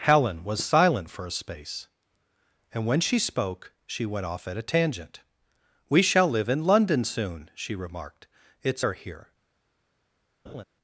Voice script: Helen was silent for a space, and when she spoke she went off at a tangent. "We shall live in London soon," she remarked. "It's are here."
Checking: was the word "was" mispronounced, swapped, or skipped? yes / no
no